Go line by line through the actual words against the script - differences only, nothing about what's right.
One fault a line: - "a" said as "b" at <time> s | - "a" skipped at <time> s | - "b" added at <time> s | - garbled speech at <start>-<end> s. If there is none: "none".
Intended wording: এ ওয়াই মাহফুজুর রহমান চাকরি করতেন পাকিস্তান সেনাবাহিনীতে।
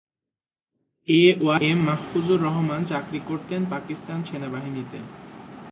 - "এম" added at 1.7 s